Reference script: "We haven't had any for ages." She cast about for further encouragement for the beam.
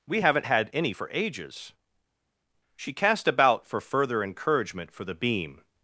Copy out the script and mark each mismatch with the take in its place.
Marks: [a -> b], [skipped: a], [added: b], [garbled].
"We haven't had any for ages." She cast about for further encouragement for the beam.